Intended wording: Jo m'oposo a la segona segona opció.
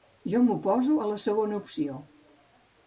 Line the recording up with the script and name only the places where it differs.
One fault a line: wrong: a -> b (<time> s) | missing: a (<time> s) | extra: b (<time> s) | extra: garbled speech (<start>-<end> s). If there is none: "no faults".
missing: segona (1.6 s)